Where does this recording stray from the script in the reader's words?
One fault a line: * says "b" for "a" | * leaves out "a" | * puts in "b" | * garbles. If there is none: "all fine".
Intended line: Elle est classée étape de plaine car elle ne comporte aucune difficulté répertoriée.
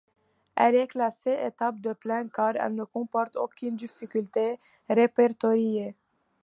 all fine